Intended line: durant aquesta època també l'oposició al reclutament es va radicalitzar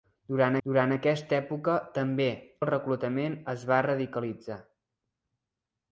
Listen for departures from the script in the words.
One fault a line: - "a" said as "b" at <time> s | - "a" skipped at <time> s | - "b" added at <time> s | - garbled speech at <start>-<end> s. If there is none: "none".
- "durant" added at 0.7 s
- "l'oposició" skipped at 2.3 s